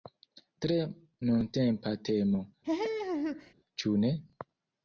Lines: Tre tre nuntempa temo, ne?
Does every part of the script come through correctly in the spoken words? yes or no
no